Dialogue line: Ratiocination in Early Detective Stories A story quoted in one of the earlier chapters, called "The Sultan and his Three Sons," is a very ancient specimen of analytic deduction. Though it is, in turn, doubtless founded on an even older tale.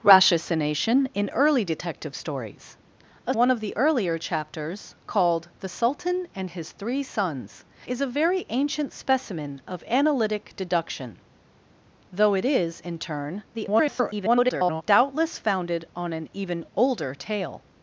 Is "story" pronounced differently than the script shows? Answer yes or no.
yes